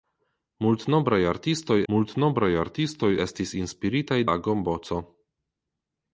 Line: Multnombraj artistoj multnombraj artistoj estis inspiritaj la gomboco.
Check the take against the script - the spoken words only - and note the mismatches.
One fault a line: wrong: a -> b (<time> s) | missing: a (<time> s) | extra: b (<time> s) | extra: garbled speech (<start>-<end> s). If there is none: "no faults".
no faults